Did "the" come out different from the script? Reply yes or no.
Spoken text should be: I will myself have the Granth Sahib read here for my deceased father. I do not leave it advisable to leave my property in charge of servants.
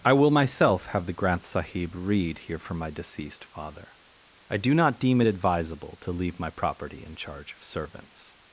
no